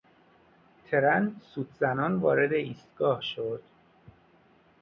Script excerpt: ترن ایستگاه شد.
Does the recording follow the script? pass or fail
fail